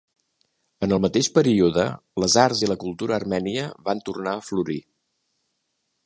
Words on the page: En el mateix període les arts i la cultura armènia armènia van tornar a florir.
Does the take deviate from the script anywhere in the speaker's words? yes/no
yes